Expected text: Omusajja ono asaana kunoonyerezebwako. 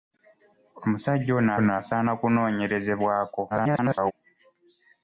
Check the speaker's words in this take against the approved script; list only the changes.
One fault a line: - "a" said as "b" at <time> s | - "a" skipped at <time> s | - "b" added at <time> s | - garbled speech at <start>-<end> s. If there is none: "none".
- "ono" added at 1.6 s
- garbled speech at 3.5-4.1 s